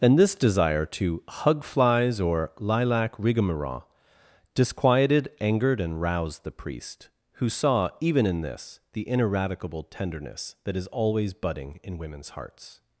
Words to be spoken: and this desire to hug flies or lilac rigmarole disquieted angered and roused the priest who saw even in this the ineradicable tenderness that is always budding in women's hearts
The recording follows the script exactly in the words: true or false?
true